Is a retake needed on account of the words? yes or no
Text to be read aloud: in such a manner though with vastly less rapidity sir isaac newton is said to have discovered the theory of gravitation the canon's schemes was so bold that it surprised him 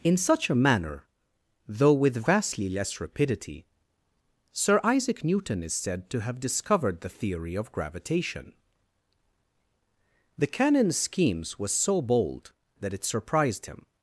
no